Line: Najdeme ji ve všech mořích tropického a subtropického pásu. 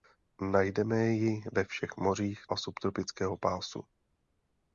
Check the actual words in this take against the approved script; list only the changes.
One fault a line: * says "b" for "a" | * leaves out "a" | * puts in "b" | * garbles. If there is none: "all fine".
* leaves out "tropického"